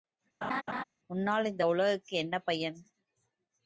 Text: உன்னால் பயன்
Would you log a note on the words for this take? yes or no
yes